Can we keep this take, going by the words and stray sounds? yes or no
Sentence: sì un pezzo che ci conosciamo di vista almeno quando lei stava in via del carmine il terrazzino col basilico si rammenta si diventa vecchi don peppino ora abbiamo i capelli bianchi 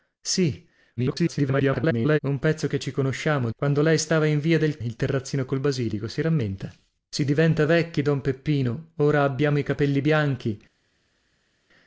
no